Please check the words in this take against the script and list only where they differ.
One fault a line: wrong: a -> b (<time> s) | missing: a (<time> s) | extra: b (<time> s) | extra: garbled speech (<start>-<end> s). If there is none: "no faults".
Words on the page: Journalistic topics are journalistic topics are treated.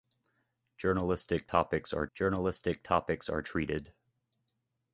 no faults